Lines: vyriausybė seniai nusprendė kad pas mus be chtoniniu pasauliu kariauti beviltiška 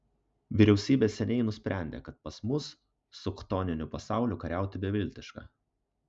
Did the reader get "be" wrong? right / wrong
wrong